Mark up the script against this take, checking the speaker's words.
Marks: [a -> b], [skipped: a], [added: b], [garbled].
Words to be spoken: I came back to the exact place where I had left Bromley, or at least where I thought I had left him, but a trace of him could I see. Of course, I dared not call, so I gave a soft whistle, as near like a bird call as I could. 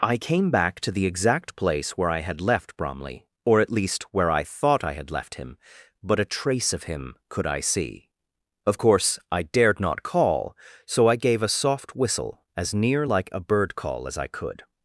I came back to the exact place where I had left Bromley, or at least where I thought I had left him, but a trace of him could I see. Of course, I dared not call, so I gave a soft whistle, as near like a bird call as I could.